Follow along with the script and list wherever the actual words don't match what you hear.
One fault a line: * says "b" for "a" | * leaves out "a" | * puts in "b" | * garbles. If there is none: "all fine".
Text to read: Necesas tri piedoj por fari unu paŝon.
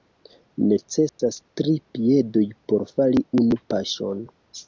all fine